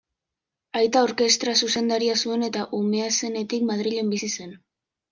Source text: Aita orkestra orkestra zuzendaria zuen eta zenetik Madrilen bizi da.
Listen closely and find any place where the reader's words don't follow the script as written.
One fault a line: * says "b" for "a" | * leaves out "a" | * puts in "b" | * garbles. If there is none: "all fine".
* leaves out "orkestra"
* puts in "umea"
* says "zen" for "da"